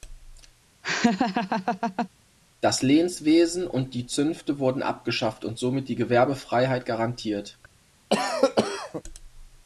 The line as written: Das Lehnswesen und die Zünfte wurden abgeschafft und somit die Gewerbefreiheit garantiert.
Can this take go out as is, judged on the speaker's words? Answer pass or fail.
pass